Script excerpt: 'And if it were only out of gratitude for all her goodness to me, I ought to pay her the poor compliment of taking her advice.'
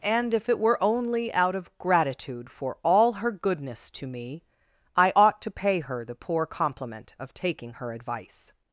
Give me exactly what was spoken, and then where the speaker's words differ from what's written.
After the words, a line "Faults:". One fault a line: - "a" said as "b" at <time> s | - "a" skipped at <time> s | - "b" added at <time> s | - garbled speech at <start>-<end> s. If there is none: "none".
'And if it were only out of gratitude for all her goodness to me, I ought to pay her the poor compliment of taking her advice.'
Faults:
none